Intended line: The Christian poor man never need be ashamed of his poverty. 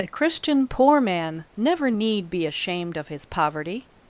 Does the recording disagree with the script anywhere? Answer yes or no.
yes